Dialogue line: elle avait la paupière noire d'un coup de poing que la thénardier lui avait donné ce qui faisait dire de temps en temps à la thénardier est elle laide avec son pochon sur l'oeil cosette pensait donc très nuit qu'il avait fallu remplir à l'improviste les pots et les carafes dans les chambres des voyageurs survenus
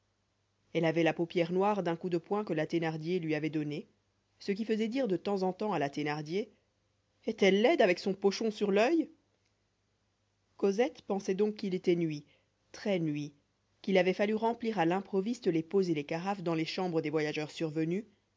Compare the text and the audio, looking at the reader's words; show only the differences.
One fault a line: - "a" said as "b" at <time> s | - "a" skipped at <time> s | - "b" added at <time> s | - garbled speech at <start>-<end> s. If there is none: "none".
- "qu'il était nuit" added at 11.5 s